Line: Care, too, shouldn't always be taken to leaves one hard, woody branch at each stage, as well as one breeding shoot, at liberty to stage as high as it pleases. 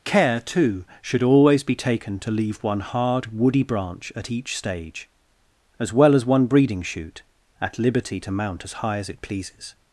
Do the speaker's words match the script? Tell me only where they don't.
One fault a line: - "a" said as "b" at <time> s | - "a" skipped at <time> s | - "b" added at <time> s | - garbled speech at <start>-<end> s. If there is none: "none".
- "shouldn't" said as "should" at 1.0 s
- "leaves" said as "leave" at 2.3 s
- "stage" said as "mount" at 8.3 s